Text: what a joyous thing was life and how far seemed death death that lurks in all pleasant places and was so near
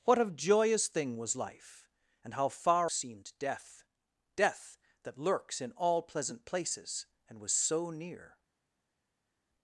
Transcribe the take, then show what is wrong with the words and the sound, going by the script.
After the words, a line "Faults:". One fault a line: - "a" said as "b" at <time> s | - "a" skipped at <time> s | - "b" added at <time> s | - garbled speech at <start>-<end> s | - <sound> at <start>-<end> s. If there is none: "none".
what a joyous thing was life and how far seemed death death that lurks in all pleasant places and was so near
Faults:
none